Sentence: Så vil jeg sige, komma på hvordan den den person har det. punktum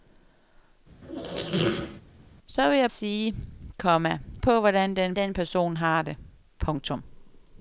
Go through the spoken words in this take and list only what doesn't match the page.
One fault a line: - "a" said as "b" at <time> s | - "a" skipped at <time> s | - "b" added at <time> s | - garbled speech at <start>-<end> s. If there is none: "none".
none